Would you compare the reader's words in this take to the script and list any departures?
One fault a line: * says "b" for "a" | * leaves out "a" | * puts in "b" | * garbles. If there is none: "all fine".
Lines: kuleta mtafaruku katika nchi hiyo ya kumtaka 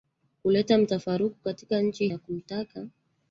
* leaves out "hiyo"